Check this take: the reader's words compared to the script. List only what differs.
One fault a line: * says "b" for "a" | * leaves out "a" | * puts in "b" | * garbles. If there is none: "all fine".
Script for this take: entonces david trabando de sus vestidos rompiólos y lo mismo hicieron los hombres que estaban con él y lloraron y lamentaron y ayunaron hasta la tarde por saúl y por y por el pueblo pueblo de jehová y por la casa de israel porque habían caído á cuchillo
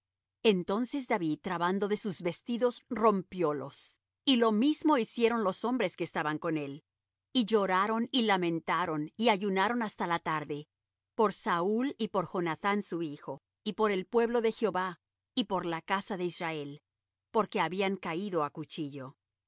* puts in "jonathán su hijo"
* leaves out "pueblo"